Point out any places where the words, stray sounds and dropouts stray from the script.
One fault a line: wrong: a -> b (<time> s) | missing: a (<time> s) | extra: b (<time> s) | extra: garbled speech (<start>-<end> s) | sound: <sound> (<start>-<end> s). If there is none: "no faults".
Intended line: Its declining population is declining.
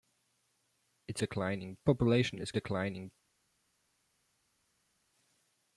no faults